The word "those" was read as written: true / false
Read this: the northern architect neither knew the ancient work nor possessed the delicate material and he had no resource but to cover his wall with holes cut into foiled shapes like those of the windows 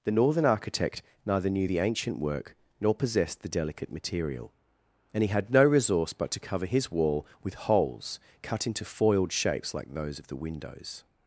true